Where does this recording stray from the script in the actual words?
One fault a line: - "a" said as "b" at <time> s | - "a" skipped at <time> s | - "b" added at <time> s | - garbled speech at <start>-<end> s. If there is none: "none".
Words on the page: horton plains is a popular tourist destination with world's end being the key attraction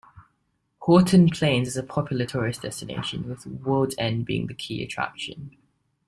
none